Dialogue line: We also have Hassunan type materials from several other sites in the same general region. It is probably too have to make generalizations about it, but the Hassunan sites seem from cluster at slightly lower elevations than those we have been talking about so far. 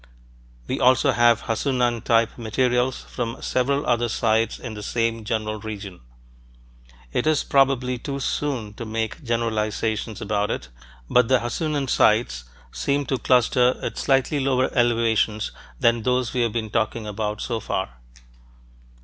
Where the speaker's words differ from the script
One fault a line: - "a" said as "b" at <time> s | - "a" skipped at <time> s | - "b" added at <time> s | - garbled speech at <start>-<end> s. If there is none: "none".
- "have" said as "soon" at 8.2 s
- "from" said as "to" at 13.1 s